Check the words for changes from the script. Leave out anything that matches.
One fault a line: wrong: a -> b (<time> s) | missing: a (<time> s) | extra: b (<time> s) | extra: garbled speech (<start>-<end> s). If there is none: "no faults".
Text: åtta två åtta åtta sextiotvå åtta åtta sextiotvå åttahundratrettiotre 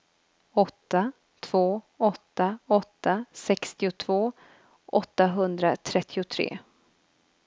missing: åtta åtta sextiotvå (4.3 s)